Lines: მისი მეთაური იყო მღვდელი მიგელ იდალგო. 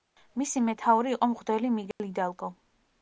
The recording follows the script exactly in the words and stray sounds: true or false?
false